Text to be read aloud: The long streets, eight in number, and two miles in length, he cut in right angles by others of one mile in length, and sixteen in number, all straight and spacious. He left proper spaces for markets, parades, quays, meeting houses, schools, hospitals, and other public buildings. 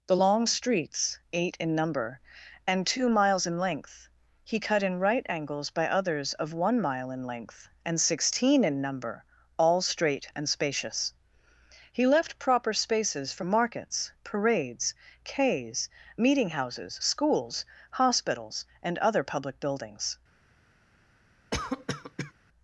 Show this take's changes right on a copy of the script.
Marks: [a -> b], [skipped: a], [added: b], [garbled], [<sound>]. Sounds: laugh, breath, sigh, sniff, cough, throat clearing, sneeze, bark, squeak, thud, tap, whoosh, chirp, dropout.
The long streets, eight in number, and two miles in length, he cut in right angles by others of one mile in length, and sixteen in number, all straight and spacious. He left proper spaces for markets, parades, quays, meeting houses, schools, hospitals, and other public buildings. [cough]